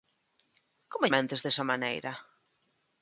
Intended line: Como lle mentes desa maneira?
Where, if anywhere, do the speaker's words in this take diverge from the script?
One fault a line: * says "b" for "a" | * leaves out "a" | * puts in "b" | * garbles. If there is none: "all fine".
* leaves out "lle"